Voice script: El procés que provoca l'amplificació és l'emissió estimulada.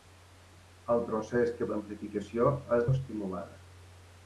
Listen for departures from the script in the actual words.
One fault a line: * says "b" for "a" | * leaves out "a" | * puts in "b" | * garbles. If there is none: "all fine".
* leaves out "provoca"
* leaves out "l'emissió"